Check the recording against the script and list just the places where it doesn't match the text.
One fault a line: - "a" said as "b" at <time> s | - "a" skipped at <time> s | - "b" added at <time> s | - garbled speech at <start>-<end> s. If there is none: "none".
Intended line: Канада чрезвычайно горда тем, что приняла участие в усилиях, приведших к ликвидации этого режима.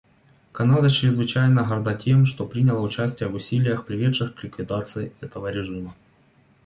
none